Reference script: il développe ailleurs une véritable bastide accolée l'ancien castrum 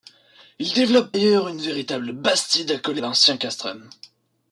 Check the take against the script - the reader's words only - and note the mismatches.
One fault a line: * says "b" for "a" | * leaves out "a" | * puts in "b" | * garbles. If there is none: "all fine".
all fine